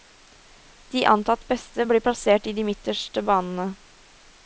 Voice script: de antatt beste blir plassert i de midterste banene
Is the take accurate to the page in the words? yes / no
yes